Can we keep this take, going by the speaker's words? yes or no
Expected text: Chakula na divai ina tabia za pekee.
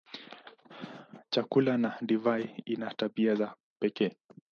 yes